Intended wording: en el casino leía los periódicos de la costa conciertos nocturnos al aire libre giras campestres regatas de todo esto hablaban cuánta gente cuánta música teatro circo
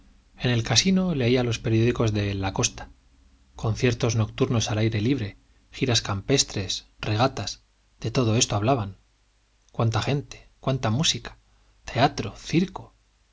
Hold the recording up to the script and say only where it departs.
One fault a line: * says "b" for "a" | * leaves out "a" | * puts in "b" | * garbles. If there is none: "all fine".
all fine